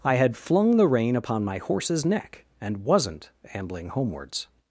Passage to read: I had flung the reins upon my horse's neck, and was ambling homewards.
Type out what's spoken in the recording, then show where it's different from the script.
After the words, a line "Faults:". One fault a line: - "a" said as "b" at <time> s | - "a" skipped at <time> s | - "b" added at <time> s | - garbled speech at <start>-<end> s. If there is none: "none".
I had flung the rein upon my horse's neck, and wasn't ambling homewards.
Faults:
- "reins" said as "rein" at 0.9 s
- "was" said as "wasn't" at 2.8 s